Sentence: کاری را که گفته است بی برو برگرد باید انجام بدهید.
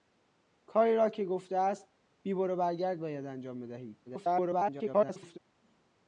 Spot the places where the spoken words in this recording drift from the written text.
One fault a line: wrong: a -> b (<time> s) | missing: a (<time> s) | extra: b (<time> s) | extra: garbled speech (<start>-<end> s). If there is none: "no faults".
extra: garbled speech (4.1-5.4 s)